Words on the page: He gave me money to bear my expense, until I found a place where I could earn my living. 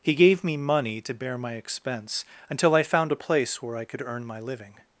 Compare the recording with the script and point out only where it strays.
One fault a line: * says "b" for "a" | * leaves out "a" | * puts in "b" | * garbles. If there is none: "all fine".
all fine